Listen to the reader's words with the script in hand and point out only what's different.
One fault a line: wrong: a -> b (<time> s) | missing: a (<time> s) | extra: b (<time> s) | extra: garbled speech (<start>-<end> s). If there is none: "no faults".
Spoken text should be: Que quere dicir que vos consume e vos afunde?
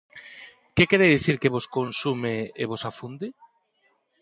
no faults